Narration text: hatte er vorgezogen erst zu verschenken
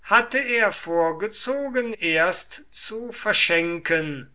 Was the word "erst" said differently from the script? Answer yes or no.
no